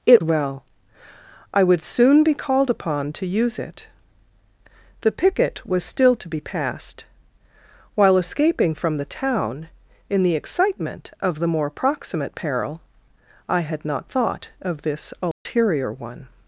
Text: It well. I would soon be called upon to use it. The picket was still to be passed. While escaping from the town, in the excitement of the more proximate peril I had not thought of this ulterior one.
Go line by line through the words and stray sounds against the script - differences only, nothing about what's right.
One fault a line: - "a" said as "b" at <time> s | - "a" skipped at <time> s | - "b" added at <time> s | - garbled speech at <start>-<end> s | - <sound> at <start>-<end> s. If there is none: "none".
- dropout at 15.3-15.5 s